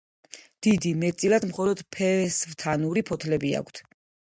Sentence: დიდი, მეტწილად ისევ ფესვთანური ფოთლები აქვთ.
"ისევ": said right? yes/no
no